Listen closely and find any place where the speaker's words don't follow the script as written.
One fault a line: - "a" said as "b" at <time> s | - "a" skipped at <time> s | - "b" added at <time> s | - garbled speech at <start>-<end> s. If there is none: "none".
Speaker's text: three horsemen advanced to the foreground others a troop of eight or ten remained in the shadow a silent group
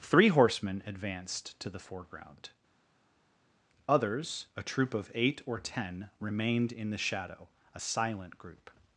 none